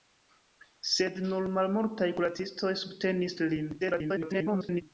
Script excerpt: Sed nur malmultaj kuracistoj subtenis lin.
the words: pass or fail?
fail